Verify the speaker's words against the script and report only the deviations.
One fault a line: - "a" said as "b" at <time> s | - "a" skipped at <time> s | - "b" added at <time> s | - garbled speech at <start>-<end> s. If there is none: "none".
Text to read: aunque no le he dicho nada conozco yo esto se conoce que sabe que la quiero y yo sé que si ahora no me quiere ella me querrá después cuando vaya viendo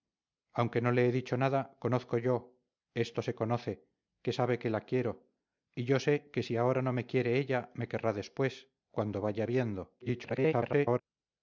- garbled speech at 10.0-11.0 s